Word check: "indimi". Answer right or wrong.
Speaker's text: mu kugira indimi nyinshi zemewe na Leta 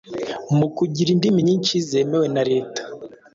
right